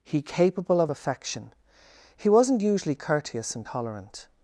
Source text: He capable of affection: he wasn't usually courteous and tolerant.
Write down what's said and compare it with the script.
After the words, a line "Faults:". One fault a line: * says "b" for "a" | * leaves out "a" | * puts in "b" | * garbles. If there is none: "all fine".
He capable of affection: he wasn't usually courteous and tolerant.
Faults:
all fine